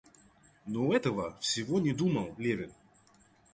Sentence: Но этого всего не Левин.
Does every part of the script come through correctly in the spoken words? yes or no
no